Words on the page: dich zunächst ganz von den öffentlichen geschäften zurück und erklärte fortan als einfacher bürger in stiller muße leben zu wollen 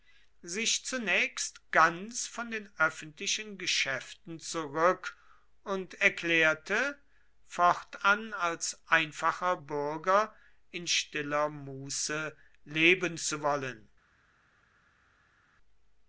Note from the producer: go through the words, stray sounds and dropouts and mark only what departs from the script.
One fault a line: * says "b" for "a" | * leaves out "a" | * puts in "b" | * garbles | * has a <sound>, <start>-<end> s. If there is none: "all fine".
* says "sich" for "dich"